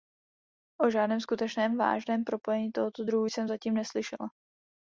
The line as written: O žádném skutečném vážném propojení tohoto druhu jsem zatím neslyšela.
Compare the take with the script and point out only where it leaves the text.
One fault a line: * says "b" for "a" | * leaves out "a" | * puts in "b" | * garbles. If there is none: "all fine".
all fine